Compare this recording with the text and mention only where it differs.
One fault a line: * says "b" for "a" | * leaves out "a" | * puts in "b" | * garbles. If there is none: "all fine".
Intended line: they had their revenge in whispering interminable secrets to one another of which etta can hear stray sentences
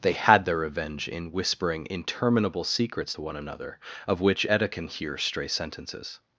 all fine